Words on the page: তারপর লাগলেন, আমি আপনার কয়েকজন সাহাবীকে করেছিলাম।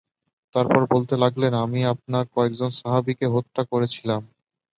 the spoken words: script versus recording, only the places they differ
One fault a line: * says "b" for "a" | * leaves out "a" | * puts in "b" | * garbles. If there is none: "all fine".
* puts in "বলতে"
* puts in "হত্যা"